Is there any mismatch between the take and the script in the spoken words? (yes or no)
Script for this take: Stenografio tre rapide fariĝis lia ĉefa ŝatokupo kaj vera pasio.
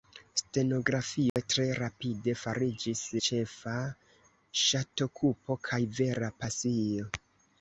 yes